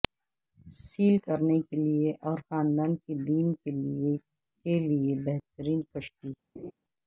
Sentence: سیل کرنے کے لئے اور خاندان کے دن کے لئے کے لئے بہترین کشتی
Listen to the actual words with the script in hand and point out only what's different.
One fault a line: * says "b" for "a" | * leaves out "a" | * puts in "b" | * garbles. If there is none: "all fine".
all fine